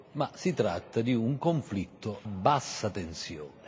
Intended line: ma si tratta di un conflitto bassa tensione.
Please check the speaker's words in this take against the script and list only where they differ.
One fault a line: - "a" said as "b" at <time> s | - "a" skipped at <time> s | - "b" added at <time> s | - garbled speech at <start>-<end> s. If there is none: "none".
none